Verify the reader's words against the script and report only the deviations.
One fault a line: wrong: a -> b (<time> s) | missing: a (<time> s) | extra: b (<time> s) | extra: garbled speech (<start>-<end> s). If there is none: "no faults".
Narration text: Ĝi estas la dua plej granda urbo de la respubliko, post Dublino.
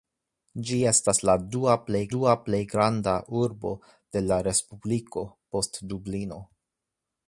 extra: dua plej (2.1 s)